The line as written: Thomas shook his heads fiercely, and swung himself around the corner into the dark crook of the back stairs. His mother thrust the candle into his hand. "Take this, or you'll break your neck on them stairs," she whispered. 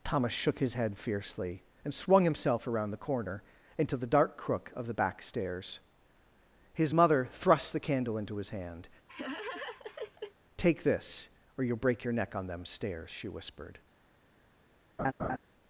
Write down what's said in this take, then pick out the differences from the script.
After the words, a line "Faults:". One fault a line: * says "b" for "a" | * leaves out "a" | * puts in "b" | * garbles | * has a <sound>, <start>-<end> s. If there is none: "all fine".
Thomas shook his head fiercely, and swung himself around the corner into the dark crook of the back stairs. His mother thrust the candle into his hand. "Take this, or you'll break your neck on them stairs," she whispered.
Faults:
* says "head" for "heads"
* has a laugh, 9.1-10.3 s
* has a laugh, 15.0-15.4 s